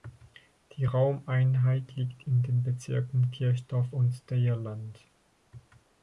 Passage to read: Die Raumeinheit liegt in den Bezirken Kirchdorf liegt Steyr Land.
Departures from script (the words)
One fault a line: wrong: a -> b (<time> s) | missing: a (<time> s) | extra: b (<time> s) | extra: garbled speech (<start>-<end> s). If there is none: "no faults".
wrong: liegt -> und (3.9 s)